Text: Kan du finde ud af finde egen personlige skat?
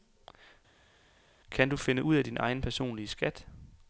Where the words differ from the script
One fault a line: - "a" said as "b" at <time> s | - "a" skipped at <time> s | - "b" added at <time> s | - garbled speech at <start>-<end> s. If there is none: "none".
- "finde" said as "din" at 2.2 s